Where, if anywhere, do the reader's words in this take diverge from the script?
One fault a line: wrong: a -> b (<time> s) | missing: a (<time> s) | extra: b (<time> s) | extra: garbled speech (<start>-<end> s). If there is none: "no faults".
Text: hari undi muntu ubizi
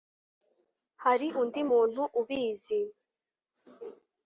no faults